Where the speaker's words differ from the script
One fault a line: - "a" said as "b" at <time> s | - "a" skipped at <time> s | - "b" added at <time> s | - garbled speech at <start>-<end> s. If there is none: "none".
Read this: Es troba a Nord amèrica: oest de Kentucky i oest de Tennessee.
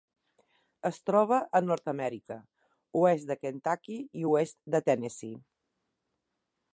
none